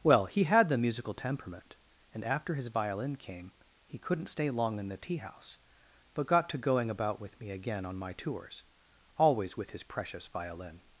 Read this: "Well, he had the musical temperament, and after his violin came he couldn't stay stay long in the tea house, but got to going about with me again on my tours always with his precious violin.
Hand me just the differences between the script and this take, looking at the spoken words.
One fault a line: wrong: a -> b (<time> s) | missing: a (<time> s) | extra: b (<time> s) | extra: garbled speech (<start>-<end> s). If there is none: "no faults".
missing: stay (4.5 s)